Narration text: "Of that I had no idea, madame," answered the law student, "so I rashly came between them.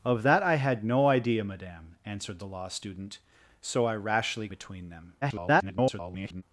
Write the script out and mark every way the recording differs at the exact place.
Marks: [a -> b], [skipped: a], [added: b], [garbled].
"Of that I had no idea, madame," answered the law student, "so I rashly [skipped: came] between them. [garbled]